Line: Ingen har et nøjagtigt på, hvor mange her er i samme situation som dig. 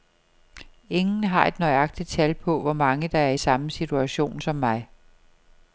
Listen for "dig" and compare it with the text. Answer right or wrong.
wrong